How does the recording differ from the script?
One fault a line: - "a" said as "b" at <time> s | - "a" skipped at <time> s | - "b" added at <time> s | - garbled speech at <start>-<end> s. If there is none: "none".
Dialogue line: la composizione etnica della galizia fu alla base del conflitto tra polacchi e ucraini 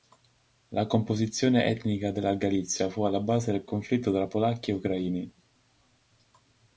none